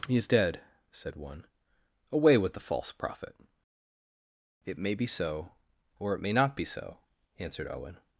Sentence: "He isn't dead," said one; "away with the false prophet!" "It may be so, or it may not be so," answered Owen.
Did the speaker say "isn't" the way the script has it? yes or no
no